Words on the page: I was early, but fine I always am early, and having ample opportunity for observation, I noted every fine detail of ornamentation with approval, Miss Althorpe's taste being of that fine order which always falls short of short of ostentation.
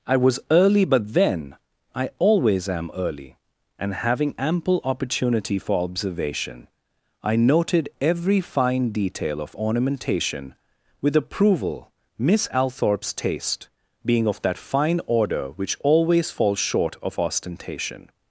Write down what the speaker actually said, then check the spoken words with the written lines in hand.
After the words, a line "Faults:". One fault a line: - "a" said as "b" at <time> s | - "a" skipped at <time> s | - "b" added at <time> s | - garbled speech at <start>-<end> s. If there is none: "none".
I was early, but then I always am early, and having ample opportunity for observation, I noted every fine detail of ornamentation with approval, Miss Althorpe's taste being of that fine order which always falls short of ostentation.
Faults:
- "fine" said as "then" at 1.1 s
- "short of" skipped at 17.2 s